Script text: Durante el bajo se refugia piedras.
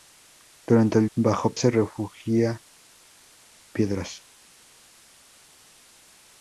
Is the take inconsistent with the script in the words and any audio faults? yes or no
no